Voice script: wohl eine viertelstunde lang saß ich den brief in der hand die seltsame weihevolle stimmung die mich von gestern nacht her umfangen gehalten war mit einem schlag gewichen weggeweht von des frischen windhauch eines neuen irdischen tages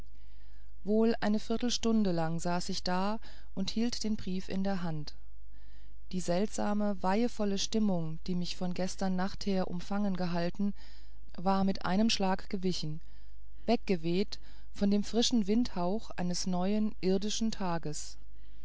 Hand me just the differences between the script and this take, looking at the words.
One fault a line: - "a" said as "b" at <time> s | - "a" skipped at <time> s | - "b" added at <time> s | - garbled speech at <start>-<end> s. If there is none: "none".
- "da und hielt" added at 2.8 s
- "des" said as "dem" at 14.9 s